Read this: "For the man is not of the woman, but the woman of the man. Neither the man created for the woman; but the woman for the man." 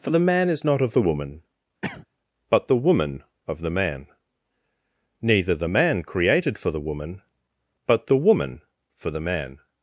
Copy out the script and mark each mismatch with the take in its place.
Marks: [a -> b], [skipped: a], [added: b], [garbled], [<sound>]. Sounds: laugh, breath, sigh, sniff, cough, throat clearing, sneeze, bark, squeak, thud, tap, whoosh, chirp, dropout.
"For the man is not of the woman, [cough] but the woman of the man. Neither the man created for the woman; but the woman for the man."